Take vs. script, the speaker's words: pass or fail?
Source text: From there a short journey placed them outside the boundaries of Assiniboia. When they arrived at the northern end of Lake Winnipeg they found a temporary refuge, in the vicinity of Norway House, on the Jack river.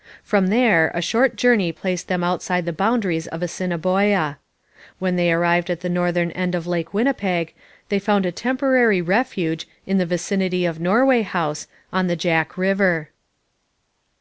pass